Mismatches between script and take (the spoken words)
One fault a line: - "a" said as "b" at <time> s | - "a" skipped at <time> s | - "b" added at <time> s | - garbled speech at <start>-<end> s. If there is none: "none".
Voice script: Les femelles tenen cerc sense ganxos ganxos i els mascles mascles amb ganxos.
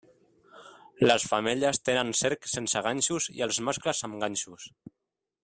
- "ganxos" skipped at 3.3 s
- "mascles" skipped at 4.0 s